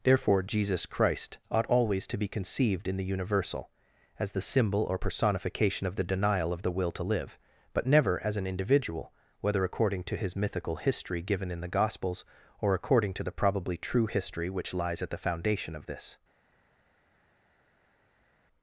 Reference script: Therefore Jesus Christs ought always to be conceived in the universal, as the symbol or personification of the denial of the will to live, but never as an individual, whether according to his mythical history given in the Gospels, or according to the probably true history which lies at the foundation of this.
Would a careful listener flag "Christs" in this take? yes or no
yes